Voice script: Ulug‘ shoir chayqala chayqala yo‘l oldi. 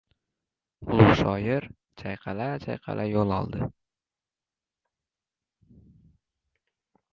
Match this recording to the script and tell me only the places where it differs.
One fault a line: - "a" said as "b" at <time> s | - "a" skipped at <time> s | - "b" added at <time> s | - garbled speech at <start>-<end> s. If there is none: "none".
none